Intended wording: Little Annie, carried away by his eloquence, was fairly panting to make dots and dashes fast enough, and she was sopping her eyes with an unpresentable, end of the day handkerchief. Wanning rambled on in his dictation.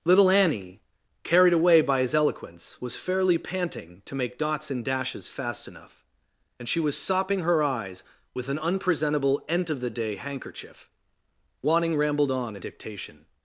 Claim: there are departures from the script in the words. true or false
true